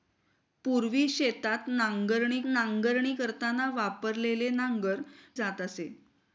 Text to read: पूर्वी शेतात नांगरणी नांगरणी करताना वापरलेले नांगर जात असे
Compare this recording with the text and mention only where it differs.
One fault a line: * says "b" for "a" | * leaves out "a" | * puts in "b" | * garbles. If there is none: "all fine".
all fine